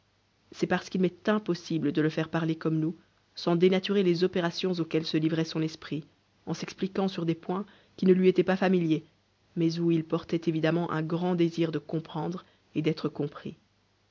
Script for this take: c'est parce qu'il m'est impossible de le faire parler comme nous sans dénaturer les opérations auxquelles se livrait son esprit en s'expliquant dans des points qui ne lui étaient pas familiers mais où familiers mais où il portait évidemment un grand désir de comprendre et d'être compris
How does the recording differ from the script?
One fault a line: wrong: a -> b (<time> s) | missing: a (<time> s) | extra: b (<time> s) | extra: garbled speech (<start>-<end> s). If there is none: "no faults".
wrong: dans -> sur (7.1 s)
missing: familiers mais où (9.9 s)